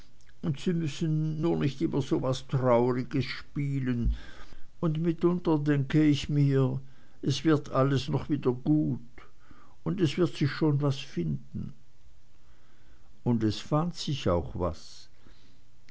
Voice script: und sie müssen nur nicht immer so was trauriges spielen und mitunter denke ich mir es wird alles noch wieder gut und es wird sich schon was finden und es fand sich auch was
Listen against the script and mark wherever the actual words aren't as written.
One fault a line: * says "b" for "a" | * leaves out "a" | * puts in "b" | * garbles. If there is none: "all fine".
all fine